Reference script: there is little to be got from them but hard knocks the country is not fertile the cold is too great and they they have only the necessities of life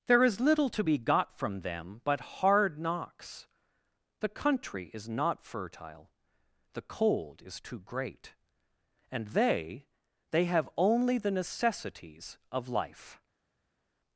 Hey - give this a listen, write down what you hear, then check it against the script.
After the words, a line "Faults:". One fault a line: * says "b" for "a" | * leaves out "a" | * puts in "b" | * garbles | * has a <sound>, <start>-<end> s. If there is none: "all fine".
there is little to be got from them but hard knocks the country is not fertile the cold is too great and they they have only the necessities of life
Faults:
all fine